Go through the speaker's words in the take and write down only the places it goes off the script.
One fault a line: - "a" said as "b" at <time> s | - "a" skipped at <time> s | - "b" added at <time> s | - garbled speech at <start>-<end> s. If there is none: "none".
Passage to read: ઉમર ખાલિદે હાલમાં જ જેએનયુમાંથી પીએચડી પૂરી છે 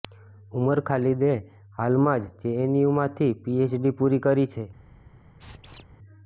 - "કરી" added at 4.2 s